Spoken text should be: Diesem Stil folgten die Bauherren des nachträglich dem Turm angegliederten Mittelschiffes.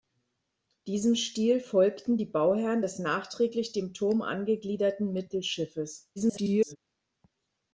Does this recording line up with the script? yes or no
no